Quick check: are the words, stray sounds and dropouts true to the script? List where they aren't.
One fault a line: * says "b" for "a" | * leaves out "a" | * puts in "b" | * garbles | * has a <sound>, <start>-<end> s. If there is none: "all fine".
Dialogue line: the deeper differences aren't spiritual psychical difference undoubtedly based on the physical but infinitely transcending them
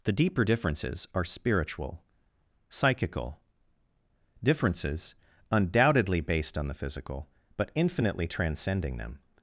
* says "are" for "aren't"
* says "differences" for "difference"